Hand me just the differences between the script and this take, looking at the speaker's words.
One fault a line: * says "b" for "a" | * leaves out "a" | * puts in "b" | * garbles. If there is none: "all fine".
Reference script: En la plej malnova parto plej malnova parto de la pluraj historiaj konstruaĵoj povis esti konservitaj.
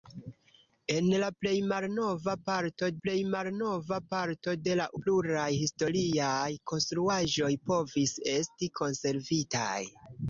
all fine